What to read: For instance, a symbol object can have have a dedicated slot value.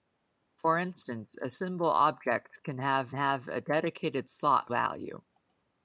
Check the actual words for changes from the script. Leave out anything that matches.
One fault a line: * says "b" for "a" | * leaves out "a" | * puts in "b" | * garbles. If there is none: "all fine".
all fine